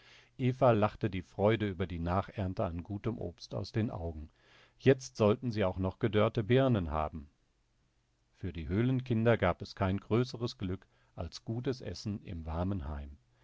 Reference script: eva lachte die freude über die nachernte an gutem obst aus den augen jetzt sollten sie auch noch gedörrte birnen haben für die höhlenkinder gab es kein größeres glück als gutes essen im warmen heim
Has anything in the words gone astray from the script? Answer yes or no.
no